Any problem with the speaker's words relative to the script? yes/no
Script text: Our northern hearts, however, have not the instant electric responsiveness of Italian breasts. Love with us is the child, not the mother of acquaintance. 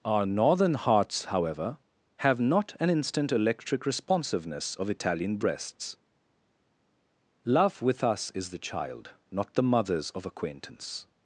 yes